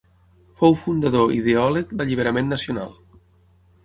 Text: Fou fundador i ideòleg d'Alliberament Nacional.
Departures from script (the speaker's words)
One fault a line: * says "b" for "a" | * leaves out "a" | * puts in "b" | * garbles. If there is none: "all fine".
all fine